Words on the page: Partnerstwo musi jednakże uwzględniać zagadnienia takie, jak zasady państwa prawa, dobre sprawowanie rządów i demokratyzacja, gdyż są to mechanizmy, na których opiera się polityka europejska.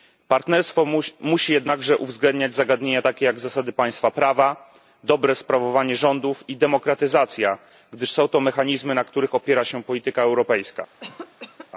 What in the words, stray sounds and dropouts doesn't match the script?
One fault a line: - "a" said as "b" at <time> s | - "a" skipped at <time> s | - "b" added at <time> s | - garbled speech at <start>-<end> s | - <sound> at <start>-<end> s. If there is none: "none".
- cough at 11.0-11.7 s